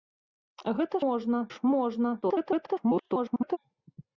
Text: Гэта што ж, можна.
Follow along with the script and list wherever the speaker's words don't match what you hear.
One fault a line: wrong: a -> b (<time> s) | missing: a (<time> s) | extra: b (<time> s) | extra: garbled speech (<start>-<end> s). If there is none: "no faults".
wrong: што -> можна (1.0 s)
extra: garbled speech (2.2-3.6 s)